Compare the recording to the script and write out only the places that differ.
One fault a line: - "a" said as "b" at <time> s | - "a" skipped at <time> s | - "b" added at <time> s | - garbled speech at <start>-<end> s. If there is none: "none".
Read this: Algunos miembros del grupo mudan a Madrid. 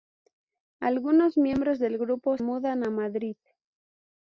none